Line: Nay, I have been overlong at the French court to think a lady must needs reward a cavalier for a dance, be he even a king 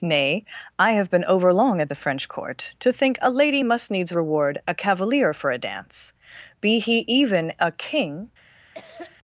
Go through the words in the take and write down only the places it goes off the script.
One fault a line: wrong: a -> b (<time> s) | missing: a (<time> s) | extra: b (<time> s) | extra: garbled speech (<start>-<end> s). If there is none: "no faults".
no faults